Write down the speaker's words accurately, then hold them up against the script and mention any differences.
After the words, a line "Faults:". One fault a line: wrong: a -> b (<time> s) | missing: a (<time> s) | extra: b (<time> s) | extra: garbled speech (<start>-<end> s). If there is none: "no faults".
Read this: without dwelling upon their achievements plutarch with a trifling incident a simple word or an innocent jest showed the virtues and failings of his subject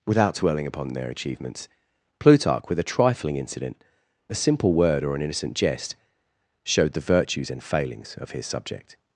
without dwelling upon their achievements plutarch with a trifling incident a simple word or an innocent jest showed the virtues and failings of his subject
Faults:
no faults